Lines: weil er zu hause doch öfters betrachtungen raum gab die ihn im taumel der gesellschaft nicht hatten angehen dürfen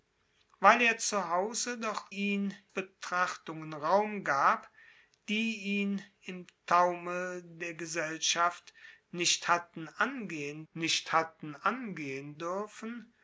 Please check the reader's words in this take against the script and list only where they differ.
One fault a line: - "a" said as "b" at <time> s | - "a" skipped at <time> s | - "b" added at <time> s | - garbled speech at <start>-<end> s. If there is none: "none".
- "öfters" said as "ihn" at 2.1 s
- "nicht hatten angehen" added at 10.7 s